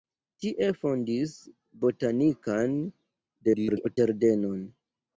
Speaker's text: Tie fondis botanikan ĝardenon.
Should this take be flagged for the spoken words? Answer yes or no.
yes